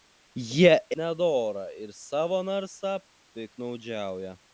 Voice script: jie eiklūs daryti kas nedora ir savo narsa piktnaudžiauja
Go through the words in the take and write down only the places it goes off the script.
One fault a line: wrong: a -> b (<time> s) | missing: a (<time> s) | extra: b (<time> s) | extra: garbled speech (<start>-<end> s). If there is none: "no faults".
missing: eiklūs daryti kas (0.8 s)